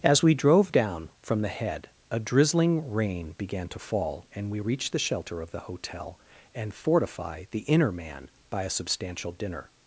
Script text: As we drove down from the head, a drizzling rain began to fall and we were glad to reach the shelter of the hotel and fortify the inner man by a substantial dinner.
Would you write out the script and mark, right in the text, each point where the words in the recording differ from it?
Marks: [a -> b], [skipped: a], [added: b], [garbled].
As we drove down from the head, a drizzling rain began to fall and we [skipped: were glad to] reach the shelter of the hotel and fortify the inner man by a substantial dinner.